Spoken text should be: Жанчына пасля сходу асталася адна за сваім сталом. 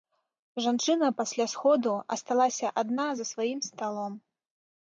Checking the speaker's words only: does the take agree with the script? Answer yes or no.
yes